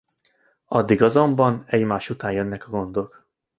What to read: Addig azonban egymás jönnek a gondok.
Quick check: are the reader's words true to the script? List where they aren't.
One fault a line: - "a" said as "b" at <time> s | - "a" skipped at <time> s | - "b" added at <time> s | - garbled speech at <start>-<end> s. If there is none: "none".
- "után" added at 2.1 s